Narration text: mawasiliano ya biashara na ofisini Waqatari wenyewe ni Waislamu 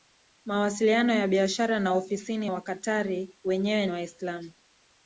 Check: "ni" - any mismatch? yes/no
yes